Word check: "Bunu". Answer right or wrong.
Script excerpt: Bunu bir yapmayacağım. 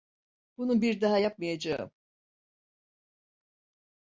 right